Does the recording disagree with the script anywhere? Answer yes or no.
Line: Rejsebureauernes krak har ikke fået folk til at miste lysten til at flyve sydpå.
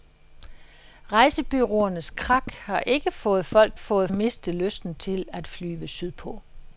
yes